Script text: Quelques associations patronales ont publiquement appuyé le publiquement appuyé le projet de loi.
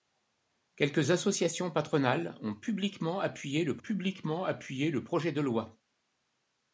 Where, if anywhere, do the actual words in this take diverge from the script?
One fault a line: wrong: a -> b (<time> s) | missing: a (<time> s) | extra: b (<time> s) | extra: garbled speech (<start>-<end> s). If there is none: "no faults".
no faults